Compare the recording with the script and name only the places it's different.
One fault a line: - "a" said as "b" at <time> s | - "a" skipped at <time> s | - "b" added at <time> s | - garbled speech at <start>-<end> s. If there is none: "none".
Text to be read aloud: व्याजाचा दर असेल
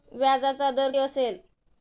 none